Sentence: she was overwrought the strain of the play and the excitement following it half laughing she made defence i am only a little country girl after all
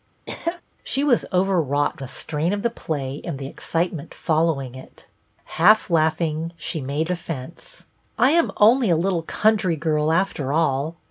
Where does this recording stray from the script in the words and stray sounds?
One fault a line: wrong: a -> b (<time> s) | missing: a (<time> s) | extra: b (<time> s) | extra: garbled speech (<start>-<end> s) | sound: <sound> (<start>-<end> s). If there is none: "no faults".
sound: cough (0.3-0.6 s)